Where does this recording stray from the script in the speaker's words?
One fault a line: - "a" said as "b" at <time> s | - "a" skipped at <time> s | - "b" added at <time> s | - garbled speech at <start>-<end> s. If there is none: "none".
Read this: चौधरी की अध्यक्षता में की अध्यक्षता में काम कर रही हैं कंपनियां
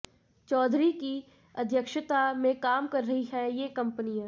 - "की अध्यक्षता में" skipped at 2.6 s
- "ये" added at 3.5 s